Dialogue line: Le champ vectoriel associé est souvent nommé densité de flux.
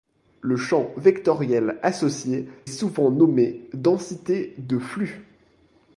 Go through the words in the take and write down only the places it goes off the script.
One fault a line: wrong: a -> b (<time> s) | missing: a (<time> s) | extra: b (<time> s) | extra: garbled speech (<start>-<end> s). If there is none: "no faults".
missing: est (2.5 s)